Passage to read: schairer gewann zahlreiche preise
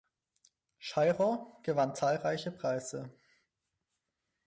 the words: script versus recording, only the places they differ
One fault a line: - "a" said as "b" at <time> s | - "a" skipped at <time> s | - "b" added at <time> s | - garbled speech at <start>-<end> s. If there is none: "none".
none